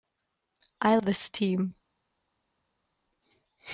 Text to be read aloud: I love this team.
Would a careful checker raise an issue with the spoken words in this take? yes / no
yes